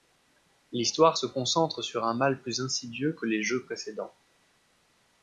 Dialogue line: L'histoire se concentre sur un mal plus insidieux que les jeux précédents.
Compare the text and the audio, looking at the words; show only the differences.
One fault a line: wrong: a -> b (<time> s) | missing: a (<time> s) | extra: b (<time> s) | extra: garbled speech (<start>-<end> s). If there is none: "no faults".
no faults